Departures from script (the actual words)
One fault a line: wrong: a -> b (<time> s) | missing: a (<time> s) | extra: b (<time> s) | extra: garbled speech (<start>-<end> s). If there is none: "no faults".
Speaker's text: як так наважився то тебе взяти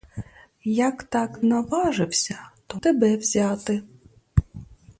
no faults